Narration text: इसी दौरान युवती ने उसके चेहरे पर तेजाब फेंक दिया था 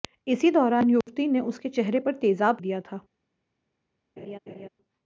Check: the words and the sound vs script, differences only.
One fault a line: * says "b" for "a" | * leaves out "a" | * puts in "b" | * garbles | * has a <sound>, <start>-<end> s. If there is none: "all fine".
* has a dropout, 1.0-1.1 s
* leaves out "फेंक"
* has a laugh, 4.2-4.7 s